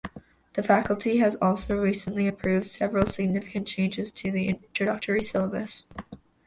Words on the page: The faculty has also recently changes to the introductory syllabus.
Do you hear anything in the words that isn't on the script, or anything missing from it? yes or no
yes